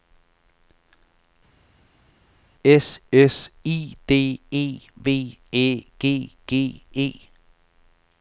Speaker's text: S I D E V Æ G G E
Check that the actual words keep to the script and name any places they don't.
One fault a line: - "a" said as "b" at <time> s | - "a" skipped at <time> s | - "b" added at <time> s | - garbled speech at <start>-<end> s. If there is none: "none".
- "s" added at 3.1 s